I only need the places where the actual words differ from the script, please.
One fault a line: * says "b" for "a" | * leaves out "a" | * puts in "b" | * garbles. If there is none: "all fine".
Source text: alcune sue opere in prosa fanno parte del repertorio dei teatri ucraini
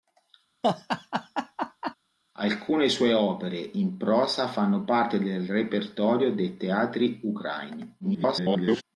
* garbles